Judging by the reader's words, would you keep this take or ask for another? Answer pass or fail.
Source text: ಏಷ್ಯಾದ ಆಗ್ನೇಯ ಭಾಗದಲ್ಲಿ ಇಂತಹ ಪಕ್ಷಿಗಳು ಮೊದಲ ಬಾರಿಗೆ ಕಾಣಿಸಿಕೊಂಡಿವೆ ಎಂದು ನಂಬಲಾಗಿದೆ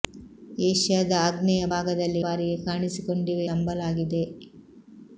fail